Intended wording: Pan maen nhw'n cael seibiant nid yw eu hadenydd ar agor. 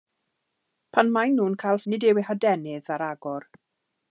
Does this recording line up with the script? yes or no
no